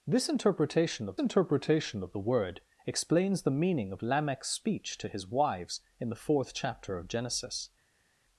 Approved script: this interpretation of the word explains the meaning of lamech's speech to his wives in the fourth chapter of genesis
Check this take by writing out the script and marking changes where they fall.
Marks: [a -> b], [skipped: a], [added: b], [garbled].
this interpretation of [added: interpretation of] the word explains the meaning of lamech's speech to his wives in the fourth chapter of genesis